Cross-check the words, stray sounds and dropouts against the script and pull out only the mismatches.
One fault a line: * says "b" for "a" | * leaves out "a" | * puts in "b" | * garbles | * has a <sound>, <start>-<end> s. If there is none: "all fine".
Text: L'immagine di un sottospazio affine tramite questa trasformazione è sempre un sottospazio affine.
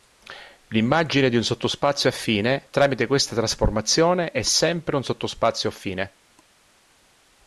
all fine